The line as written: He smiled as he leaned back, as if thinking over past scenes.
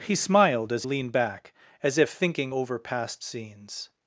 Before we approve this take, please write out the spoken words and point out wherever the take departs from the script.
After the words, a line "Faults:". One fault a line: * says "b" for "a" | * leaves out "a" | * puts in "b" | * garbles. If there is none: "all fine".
He smiled as leaned back, as if thinking over past scenes.
Faults:
* leaves out "he"